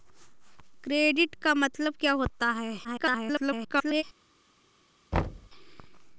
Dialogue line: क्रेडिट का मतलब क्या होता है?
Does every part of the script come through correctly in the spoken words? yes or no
no